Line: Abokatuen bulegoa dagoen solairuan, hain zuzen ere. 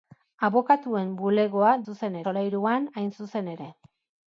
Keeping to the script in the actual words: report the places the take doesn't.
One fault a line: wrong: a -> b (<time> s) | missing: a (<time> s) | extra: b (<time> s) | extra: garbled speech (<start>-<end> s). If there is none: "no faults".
wrong: dagoen -> zuzen (1.9 s)